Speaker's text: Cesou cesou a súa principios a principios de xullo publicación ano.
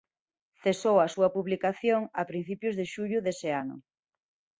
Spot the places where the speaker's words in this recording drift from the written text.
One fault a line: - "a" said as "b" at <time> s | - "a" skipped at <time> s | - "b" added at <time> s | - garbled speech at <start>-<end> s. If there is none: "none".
- "cesou" skipped at 1.0 s
- "principios" said as "publicación" at 1.3 s
- "publicación" said as "dese" at 3.3 s